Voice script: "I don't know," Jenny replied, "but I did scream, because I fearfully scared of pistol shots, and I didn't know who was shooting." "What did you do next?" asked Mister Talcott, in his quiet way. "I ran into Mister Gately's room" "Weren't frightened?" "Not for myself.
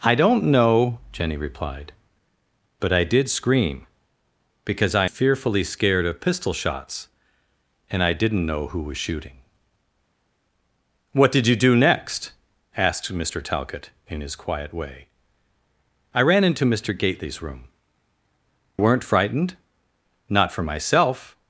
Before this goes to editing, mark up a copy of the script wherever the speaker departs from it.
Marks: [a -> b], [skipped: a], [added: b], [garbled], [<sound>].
"I don't know," Jenny replied, "but I did scream, because I fearfully scared of pistol shots, and I didn't know who was shooting." "What did you do next?" asked Mister Talcott, in his quiet way. "I ran into Mister Gately's room" "Weren't frightened?" "Not for myself.